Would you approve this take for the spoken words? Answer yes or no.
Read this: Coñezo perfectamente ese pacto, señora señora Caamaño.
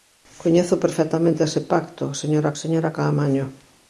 yes